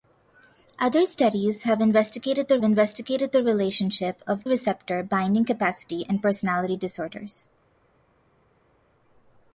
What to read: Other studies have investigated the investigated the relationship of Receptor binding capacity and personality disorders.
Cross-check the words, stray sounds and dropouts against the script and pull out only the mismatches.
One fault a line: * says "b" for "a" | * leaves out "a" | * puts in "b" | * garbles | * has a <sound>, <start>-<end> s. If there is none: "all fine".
all fine